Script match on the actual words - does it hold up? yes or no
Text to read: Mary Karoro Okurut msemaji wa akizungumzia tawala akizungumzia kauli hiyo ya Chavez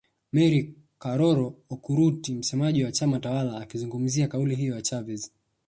no